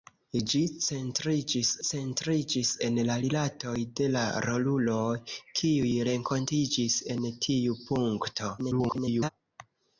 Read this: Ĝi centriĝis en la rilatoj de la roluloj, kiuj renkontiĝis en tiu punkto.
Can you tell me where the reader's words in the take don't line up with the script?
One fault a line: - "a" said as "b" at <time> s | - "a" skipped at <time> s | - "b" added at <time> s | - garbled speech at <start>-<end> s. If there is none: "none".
- "centriĝis" added at 1.9 s
- garbled speech at 8.6-9.3 s